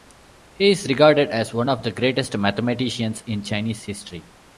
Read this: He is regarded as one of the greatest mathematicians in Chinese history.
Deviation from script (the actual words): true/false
false